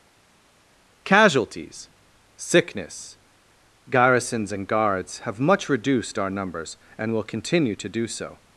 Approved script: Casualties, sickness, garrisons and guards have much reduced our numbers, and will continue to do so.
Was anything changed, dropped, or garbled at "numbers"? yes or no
no